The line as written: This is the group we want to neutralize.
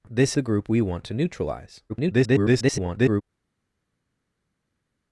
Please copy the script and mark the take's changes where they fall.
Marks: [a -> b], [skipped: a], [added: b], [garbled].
This [skipped: is] the group we want to neutralize. [garbled]